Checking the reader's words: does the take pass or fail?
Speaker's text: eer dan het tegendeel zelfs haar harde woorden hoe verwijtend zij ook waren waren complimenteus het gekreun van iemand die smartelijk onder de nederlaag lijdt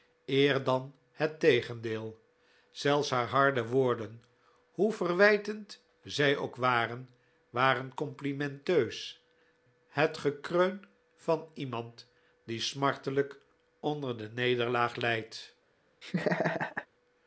pass